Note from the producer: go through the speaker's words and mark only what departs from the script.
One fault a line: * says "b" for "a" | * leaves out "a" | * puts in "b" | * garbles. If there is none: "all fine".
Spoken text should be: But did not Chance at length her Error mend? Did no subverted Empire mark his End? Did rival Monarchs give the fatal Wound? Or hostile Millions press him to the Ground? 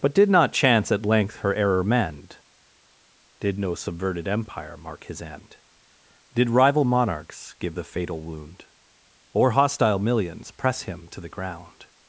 all fine